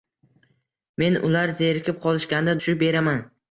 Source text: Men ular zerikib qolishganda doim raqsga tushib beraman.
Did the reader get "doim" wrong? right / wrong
wrong